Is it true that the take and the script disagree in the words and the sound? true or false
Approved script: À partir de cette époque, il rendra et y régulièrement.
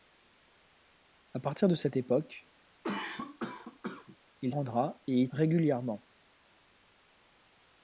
true